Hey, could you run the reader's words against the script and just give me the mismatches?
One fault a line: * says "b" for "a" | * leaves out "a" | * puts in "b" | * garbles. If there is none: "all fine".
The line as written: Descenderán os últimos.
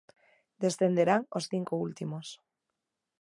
* puts in "cinco"